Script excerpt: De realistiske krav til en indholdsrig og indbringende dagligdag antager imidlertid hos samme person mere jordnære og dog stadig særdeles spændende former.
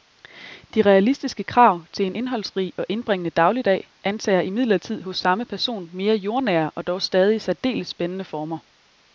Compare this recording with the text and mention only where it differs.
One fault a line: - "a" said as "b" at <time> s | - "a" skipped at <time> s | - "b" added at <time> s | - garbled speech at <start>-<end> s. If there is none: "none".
none